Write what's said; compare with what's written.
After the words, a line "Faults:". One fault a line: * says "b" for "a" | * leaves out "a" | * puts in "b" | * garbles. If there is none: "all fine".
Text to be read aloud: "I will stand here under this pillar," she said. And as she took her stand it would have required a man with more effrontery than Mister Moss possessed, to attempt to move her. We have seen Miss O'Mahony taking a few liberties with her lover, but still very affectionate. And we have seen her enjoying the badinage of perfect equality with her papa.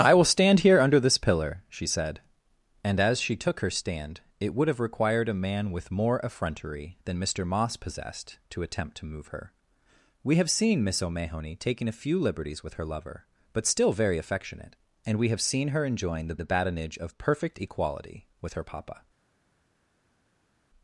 "I will stand here under this pillar," she said. And as she took her stand it would have required a man with more effrontery than Mister Moss possessed, to attempt to move her. We have seen Miss O'Mahony taking a few liberties with her lover, but still very affectionate. And we have seen her enjoying the the badinage of perfect equality with her papa.
Faults:
* puts in "the"